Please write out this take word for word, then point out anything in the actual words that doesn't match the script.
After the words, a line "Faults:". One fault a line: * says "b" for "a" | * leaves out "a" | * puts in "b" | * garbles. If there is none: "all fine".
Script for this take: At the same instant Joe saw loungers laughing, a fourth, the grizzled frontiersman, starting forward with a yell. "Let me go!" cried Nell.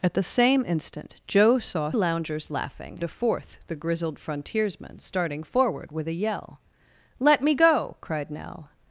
At the same instant Joe saw loungers laughing, a fourth, the grizzled frontiersman, starting forward with a yell. "Let me go!" cried Nell.
Faults:
all fine